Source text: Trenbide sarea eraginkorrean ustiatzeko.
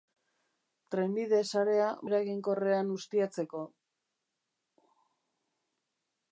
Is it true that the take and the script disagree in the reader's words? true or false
false